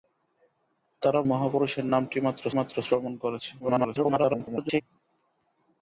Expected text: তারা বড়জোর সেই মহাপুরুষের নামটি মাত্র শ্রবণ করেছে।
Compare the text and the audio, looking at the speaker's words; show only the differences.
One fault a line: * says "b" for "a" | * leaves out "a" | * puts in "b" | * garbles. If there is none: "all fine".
* leaves out "বড়জোর সেই"
* puts in "মাত্র"
* garbles